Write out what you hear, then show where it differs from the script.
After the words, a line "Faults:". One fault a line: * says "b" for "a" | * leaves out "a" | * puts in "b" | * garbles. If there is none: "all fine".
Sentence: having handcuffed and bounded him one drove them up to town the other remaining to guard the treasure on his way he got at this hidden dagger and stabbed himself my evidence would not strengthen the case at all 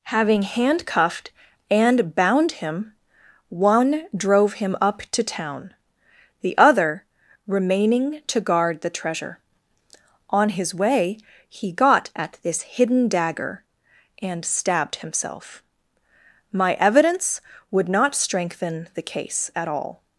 having handcuffed and bound him one drove him up to town the other remaining to guard the treasure on his way he got at this hidden dagger and stabbed himself my evidence would not strengthen the case at all
Faults:
* says "bound" for "bounded"
* says "him" for "them"